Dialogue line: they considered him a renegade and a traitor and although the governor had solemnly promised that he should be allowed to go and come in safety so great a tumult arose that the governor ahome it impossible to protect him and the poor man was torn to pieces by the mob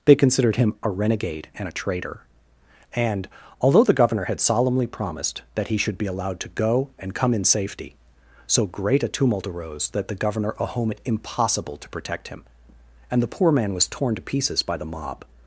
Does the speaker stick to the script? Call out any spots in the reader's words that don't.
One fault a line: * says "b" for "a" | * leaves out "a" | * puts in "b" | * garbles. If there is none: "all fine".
all fine